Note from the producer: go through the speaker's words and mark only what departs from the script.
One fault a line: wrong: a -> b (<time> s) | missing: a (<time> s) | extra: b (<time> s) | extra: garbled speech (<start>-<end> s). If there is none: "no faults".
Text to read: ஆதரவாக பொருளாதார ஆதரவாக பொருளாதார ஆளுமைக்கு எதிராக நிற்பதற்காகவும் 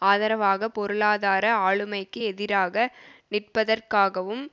missing: ஆதரவாக பொருளாதார (1.5 s)